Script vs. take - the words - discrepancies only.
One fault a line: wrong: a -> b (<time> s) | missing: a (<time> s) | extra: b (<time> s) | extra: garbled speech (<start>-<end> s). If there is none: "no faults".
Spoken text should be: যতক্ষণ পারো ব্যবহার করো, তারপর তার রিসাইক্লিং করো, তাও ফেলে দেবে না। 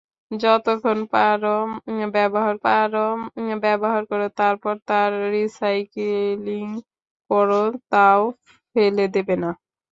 extra: পারো ব্যবহার (2.6 s)